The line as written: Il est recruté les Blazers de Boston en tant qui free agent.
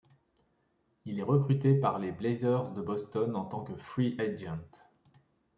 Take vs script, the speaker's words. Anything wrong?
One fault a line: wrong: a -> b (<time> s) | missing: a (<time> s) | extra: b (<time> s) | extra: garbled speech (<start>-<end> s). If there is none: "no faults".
extra: par (1.7 s)
wrong: qui -> que (3.6 s)